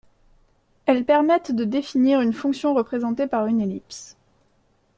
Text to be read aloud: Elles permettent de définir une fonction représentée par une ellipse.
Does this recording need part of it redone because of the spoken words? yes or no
no